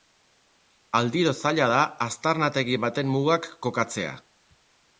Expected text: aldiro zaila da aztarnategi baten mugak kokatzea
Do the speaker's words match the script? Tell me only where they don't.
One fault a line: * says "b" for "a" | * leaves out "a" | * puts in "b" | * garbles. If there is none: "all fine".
all fine